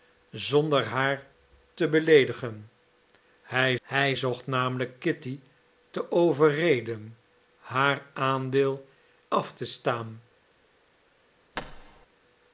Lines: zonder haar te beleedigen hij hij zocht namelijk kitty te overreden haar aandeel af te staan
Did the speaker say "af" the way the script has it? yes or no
yes